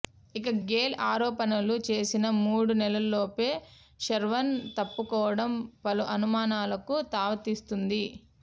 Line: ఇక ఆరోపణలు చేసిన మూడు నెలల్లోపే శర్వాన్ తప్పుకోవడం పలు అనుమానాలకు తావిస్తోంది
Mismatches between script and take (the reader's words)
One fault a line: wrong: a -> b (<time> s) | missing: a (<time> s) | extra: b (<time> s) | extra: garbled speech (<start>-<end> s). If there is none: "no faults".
extra: గేల్ (0.7 s)